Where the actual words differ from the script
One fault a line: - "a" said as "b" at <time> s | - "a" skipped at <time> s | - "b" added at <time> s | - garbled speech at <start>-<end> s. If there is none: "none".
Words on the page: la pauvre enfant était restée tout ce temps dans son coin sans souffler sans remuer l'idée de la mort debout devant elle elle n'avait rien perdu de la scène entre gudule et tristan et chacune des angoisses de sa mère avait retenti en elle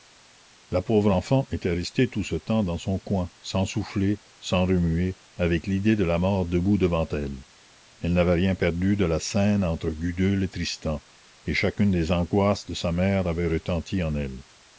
- "avec" added at 5.3 s